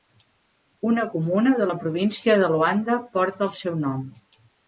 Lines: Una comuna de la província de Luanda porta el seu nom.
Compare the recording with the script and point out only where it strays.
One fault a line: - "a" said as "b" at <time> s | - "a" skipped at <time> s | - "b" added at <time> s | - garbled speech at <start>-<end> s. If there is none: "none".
none